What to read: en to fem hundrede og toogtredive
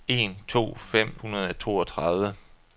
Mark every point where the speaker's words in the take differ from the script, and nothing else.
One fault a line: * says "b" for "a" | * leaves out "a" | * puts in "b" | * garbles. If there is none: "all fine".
all fine